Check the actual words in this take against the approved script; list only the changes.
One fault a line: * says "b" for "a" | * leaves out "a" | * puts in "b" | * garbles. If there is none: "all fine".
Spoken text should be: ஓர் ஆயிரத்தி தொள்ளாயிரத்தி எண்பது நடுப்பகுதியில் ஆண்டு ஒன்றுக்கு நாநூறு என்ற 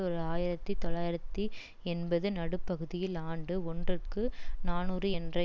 all fine